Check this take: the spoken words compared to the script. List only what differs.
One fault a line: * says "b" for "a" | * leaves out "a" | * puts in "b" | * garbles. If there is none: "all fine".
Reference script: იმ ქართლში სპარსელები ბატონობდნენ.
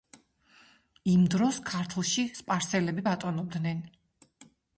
* puts in "დროს"